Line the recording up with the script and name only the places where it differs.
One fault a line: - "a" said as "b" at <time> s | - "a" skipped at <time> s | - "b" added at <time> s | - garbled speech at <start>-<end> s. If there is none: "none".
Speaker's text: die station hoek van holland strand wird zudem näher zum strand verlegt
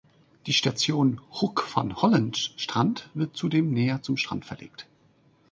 none